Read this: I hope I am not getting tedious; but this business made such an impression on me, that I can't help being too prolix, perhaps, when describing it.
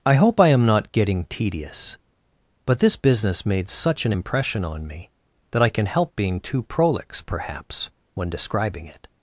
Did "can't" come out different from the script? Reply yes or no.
yes